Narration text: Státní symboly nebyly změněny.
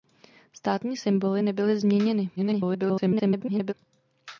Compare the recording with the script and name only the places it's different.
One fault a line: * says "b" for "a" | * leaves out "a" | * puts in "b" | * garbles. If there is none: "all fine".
* garbles